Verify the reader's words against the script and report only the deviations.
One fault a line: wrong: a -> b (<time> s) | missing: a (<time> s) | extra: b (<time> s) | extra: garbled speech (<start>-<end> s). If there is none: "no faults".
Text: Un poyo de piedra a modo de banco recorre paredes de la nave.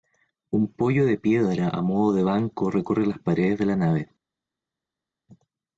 extra: las (3.0 s)